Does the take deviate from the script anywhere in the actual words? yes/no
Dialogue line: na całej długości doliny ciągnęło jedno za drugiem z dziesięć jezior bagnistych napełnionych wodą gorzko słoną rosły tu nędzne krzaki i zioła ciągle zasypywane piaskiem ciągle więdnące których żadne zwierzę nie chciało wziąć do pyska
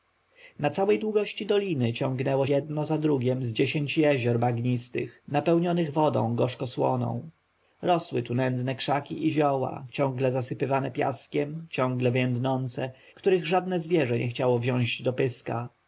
no